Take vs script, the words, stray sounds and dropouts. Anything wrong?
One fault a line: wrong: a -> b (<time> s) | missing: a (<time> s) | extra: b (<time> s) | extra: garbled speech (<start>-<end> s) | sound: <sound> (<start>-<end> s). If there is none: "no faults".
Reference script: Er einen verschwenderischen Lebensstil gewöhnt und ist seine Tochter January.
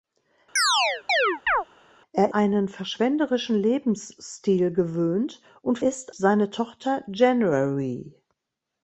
sound: chirp (0.6-1.6 s)